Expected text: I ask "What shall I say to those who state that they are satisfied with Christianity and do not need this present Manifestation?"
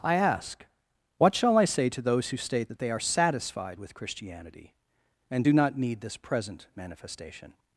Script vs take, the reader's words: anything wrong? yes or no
no